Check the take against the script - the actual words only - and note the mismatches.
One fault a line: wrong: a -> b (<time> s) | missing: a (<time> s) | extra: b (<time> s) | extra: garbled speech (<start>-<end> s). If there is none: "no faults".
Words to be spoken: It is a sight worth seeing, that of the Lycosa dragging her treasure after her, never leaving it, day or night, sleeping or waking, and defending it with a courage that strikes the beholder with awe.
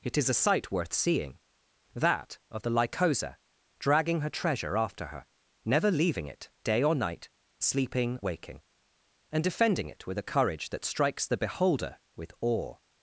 missing: or (8.2 s)